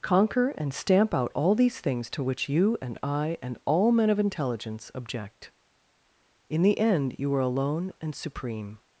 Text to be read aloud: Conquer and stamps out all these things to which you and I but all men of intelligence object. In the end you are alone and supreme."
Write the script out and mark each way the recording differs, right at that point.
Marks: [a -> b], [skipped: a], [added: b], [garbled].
Conquer and [stamps -> stamp] out all these things to which you and I [but -> and] all men of intelligence object. In the end you are alone and supreme."